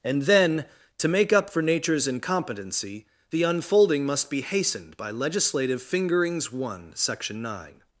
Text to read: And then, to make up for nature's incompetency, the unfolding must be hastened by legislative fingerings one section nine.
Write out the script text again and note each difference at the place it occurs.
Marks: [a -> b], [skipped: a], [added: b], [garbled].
And then, to make up for nature's incompetency, the unfolding must be hastened by legislative fingerings one section nine.